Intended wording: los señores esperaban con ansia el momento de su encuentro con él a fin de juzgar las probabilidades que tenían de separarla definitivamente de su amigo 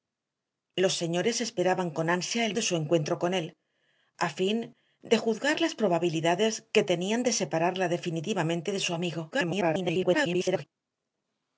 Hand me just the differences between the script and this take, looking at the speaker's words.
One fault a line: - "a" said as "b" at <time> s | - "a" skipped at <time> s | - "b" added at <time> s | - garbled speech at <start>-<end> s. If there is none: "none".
- "momento" skipped at 2.5 s
- garbled speech at 9.3-10.6 s